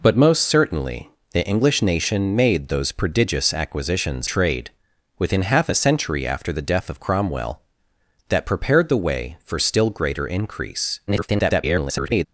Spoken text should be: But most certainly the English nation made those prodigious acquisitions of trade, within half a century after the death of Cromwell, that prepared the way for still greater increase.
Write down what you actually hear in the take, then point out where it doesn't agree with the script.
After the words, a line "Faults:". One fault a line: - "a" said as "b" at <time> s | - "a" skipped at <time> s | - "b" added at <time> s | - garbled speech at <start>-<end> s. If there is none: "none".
But most certainly the English nation made those prodigious acquisitions trade, within half a century after the death of Cromwell, that prepared the way for still greater increase. [garbled]
Faults:
- "of" skipped at 4.3 s
- garbled speech at 11.1-12.3 s